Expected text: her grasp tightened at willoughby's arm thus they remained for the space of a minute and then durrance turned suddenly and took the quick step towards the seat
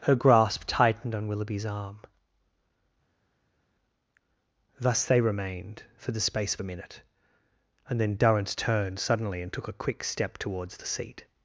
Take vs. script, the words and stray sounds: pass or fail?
fail